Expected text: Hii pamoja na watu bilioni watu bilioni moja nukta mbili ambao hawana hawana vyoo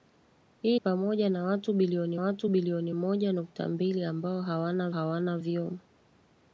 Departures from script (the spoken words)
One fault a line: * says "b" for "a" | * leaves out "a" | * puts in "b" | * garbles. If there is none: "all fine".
all fine